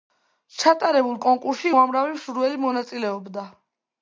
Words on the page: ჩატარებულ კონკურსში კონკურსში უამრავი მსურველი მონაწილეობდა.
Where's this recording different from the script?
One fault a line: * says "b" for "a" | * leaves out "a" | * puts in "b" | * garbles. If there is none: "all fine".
* leaves out "კონკურსში"